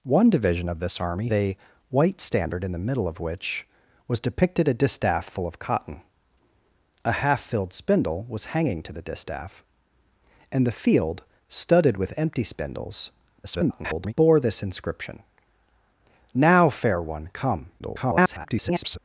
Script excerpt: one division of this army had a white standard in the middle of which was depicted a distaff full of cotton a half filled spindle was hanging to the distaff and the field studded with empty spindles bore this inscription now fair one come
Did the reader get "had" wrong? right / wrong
wrong